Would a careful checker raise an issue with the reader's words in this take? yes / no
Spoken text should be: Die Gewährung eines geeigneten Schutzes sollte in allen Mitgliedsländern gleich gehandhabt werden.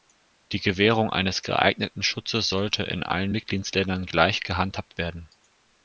no